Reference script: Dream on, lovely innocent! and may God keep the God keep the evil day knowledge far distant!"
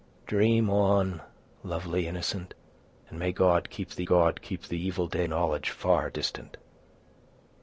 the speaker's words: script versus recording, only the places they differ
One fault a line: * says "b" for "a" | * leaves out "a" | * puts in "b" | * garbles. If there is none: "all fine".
all fine